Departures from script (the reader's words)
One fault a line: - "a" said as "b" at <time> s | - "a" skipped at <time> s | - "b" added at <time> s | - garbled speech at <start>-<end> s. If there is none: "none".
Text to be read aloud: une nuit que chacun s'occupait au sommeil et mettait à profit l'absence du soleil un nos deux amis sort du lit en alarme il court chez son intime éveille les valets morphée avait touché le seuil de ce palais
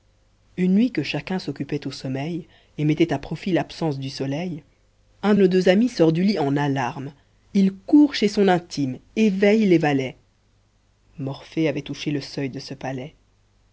none